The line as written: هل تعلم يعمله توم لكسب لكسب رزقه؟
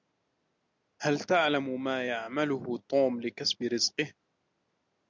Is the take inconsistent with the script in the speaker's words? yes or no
yes